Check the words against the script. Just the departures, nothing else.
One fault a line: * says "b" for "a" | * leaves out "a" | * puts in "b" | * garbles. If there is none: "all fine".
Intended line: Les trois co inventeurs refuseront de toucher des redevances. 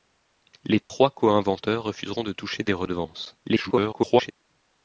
* garbles